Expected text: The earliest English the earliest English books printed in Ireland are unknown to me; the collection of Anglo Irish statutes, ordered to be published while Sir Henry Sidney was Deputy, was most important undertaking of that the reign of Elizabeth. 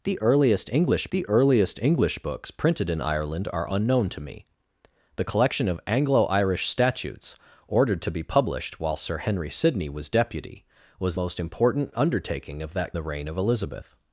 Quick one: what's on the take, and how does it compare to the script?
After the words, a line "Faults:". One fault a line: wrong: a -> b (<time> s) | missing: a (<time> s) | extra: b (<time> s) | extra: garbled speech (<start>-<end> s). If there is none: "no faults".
The earliest English the earliest English books printed in Ireland are unknown to me; the collection of Anglo Irish statutes, ordered to be published while Sir Henry Sidney was Deputy, was most important undertaking of that the reign of Elizabeth.
Faults:
no faults